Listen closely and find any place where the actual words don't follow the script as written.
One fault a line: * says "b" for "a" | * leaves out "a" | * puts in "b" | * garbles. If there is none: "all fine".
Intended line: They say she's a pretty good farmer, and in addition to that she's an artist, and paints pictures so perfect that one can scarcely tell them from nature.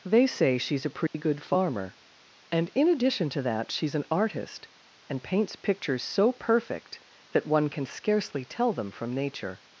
all fine